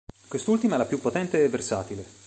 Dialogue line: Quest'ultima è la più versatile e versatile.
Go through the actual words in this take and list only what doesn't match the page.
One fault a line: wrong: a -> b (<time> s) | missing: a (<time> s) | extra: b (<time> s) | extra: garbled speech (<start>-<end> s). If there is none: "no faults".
wrong: versatile -> potente (1.0 s)